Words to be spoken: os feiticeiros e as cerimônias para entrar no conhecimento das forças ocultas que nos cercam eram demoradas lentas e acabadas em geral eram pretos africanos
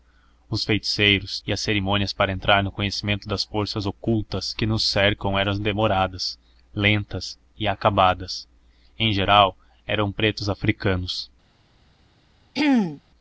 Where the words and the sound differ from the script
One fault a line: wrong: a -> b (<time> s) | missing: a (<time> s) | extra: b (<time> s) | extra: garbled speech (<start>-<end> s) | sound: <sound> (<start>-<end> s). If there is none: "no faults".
sound: throat clearing (12.5-13.0 s)